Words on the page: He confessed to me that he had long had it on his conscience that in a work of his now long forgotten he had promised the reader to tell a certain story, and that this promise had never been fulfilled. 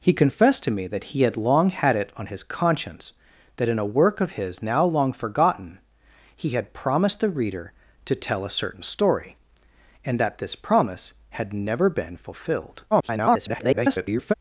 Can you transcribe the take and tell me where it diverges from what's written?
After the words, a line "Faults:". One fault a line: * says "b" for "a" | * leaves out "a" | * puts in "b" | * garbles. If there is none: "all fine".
He confessed to me that he had long had it on his conscience that in a work of his now long forgotten he had promised the reader to tell a certain story, and that this promise had never been fulfilled. [garbled]
Faults:
* garbles